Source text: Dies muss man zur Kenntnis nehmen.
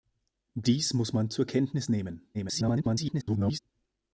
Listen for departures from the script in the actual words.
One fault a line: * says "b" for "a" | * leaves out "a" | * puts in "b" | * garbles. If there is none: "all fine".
* garbles